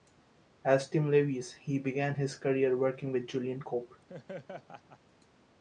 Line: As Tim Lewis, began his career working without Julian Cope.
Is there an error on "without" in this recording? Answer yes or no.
yes